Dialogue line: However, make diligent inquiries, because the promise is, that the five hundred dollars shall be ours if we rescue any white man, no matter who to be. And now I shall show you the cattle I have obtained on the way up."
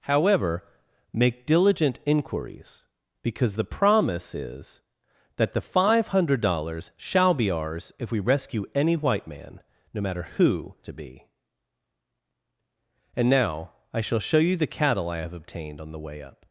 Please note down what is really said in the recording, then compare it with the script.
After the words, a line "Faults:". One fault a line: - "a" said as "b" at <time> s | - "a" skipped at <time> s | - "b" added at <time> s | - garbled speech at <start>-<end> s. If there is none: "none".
However, make diligent inquiries, because the promise is, that the five hundred dollars shall be ours if we rescue any white man, no matter who to be. And now I shall show you the cattle I have obtained on the way up."
Faults:
none